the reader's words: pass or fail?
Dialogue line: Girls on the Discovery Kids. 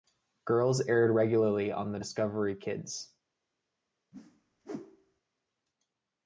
fail